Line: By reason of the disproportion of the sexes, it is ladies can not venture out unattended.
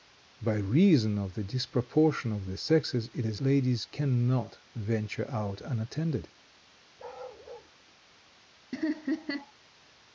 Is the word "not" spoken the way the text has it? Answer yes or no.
yes